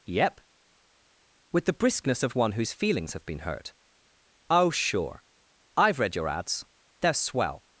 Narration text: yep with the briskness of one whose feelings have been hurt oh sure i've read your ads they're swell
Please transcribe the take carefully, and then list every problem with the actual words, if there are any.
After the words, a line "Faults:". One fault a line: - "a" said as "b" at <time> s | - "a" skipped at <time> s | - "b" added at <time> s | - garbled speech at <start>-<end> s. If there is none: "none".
yep with the briskness of one whose feelings have been hurt oh sure i've read your ads they're swell
Faults:
none